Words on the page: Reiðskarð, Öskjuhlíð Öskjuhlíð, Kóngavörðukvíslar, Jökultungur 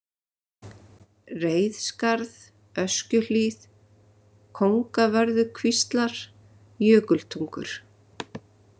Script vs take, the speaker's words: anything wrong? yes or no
yes